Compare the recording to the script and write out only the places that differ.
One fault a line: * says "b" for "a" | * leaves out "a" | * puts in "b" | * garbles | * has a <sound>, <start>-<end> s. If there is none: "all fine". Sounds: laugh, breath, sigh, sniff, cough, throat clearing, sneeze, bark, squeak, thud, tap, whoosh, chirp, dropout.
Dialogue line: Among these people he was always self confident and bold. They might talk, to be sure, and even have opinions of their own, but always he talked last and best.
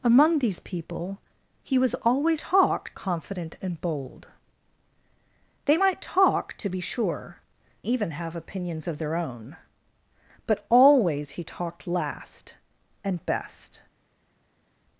* says "talk" for "self"
* leaves out "and"